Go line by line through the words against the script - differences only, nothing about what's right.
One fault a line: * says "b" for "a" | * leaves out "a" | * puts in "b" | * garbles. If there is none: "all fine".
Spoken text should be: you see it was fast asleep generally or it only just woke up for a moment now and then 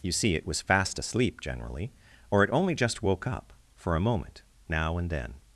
all fine